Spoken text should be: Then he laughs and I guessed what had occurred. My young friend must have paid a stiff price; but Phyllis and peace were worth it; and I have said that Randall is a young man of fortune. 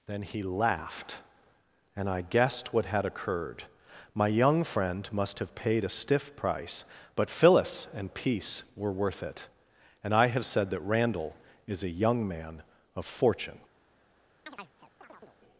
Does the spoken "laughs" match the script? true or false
false